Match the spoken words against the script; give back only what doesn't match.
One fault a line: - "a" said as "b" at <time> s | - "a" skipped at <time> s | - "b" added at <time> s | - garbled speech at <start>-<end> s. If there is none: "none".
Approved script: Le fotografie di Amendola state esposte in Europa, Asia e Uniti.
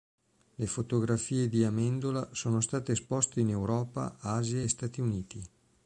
- "sono" added at 2.3 s
- "Stati" added at 4.7 s